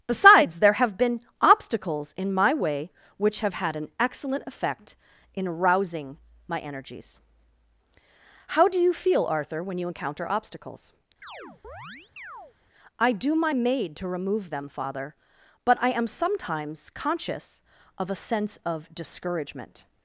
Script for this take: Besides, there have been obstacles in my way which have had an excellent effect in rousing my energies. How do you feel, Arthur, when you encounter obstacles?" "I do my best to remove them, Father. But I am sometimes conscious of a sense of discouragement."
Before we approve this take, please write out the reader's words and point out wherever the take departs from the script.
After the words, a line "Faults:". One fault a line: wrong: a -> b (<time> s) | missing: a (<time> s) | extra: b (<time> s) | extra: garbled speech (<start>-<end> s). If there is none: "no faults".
Besides, there have been obstacles in my way which have had an excellent effect in rousing my energies. How do you feel, Arthur, when you encounter obstacles?" "I do my maid to remove them, Father. But I am sometimes conscious of a sense of discouragement."
Faults:
wrong: best -> maid (13.5 s)